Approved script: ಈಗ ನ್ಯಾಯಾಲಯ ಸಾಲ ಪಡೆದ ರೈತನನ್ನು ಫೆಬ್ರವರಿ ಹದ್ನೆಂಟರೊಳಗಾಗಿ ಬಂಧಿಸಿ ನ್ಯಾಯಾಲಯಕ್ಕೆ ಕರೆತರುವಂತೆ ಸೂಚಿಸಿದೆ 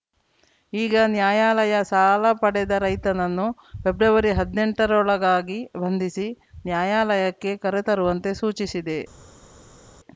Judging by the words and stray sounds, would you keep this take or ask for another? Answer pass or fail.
pass